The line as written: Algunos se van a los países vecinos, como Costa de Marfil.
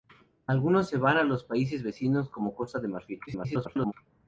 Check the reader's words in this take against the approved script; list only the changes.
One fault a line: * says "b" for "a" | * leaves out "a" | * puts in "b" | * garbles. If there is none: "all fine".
* garbles